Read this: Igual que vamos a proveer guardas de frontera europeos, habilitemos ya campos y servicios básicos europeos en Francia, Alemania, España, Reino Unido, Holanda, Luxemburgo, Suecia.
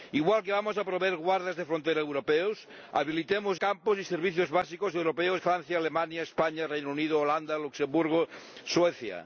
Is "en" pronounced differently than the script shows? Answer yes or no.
yes